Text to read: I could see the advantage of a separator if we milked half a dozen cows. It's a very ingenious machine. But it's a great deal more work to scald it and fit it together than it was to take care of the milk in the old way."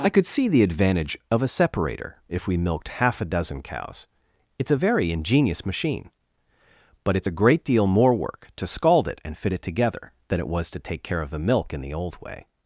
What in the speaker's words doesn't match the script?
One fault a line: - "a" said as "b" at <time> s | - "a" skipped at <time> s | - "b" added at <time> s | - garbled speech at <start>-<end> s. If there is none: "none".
none